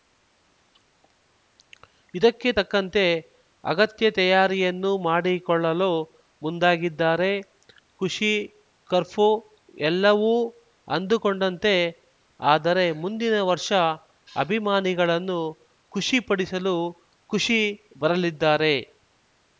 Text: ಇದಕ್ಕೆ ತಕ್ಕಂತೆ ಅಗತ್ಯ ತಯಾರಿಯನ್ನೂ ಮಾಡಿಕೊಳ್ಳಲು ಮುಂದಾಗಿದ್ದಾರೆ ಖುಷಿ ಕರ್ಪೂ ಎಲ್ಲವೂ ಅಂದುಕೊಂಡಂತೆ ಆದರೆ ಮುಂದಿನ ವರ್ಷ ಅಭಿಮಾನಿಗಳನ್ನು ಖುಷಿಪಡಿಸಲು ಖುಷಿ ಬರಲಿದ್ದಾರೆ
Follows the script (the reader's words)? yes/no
yes